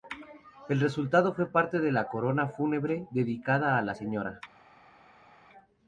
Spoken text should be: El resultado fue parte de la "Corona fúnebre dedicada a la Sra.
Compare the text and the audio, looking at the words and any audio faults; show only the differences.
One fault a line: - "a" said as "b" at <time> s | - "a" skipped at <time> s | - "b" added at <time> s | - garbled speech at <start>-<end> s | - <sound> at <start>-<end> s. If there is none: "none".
none